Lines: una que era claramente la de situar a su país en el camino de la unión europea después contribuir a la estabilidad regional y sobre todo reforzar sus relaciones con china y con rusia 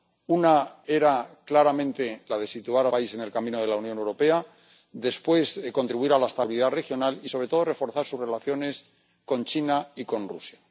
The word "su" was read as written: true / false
false